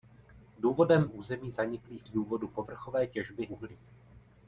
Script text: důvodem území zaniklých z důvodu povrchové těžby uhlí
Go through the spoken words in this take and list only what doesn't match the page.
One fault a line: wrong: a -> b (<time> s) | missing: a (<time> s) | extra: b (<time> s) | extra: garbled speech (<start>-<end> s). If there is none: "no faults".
no faults